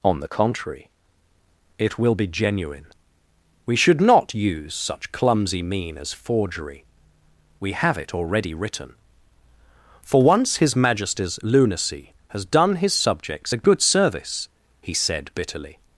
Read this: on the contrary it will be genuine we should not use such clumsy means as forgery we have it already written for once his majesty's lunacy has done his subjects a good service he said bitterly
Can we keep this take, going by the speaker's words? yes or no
no